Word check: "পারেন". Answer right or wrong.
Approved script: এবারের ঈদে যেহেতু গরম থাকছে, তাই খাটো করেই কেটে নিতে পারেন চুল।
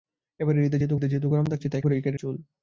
wrong